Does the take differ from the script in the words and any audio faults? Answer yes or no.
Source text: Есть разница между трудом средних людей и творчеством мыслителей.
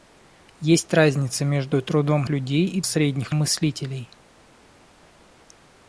yes